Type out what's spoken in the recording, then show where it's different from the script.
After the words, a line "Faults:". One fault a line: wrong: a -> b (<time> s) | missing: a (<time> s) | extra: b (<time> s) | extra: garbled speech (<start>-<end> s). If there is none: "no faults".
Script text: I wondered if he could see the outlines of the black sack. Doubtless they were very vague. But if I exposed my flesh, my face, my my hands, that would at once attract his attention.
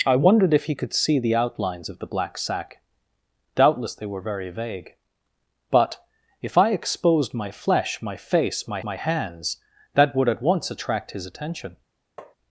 I wondered if he could see the outlines of the black sack. Doubtless they were very vague. But if I exposed my flesh, my face, my my hands, that would at once attract his attention.
Faults:
no faults